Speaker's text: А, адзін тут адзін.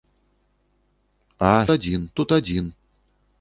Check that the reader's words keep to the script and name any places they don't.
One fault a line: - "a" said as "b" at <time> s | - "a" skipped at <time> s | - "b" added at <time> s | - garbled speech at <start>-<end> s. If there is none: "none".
none